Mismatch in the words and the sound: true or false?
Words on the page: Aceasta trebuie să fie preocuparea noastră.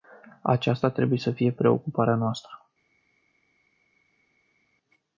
false